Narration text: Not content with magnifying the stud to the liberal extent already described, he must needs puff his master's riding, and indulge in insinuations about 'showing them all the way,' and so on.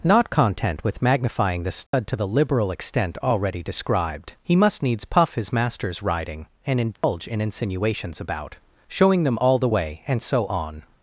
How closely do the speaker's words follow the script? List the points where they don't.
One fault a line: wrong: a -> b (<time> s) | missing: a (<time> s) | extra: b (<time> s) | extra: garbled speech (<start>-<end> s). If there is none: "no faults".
no faults